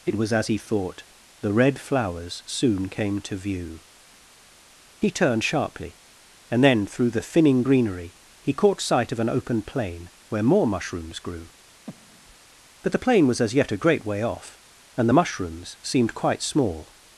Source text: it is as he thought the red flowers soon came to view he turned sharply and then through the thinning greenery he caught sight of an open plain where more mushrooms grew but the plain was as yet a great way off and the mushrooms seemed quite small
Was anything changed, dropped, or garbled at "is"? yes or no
yes